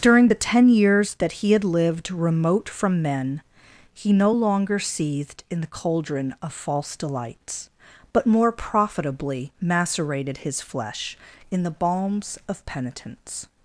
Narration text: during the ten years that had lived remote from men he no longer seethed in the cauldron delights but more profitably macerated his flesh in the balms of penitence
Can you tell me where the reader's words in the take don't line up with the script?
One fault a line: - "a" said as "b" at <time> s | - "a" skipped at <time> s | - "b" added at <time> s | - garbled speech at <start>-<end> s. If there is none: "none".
- "he" added at 1.3 s
- "of false" added at 6.4 s